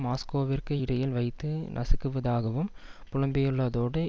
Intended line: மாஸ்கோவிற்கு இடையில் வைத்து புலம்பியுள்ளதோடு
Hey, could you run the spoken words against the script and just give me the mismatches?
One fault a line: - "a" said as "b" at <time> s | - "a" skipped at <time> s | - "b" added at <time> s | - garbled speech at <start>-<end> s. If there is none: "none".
- "நசுக்குவதாகவும்" added at 1.7 s